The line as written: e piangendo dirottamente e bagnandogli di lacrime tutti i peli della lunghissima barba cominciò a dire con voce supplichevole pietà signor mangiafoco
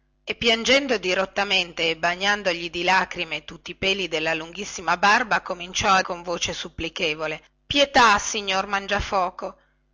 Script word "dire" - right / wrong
wrong